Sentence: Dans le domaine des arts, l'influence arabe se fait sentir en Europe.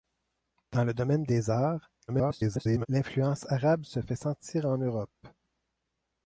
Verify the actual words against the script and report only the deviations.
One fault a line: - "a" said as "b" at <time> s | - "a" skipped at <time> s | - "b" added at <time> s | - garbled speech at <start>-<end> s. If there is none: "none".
- garbled speech at 2.1-2.9 s